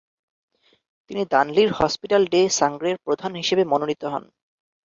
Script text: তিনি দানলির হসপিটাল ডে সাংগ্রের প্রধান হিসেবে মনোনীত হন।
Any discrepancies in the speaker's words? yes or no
no